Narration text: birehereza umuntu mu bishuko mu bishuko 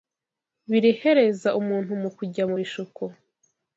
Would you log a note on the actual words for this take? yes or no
yes